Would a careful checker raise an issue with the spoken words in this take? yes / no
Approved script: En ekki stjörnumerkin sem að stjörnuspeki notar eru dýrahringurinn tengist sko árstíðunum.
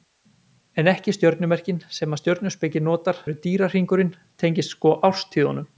no